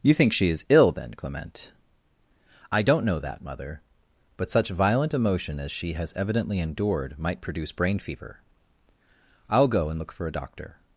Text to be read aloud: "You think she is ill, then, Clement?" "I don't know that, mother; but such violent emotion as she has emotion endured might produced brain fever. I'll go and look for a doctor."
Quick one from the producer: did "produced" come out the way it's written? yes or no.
no